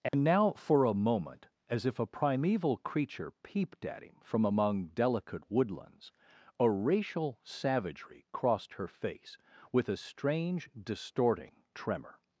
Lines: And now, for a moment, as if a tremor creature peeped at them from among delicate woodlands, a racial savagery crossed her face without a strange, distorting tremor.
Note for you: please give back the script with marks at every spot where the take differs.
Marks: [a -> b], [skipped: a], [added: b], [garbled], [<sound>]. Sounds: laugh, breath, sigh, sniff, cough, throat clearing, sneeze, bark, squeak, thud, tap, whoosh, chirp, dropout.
And [dropout] now, for a moment, as if a [tremor -> primeval] creature peeped at [them -> him] from among delicate woodlands, a racial savagery crossed her face [without -> with] a strange, distorting tremor.